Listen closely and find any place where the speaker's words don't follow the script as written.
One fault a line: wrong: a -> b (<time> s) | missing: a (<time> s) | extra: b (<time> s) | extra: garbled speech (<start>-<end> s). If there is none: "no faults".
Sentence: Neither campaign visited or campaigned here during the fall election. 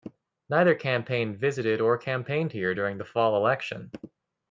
no faults